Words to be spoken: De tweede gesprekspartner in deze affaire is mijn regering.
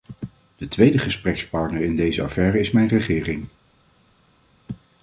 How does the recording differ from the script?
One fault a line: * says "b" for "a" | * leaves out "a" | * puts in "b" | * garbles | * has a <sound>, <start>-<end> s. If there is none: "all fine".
all fine